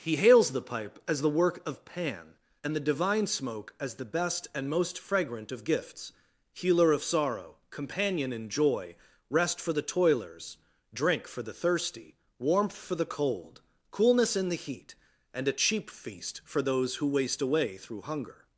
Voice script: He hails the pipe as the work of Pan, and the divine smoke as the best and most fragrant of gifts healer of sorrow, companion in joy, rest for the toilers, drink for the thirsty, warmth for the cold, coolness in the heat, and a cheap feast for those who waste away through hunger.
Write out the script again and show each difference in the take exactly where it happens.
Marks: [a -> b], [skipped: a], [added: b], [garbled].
He hails the pipe as the work of Pan, and the divine smoke as the best and most fragrant of gifts healer of sorrow, companion in joy, rest for the toilers, drink for the thirsty, warmth for the cold, coolness in the heat, and a cheap feast for those who waste away through hunger.